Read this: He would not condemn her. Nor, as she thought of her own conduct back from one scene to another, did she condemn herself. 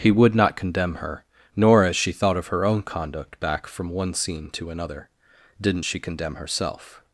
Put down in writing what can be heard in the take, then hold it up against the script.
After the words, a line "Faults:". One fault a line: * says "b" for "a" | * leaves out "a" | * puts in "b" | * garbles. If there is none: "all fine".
He would not condemn her. Nor, as she thought of her own conduct back from one scene to another, didn't she condemn herself.
Faults:
* says "didn't" for "did"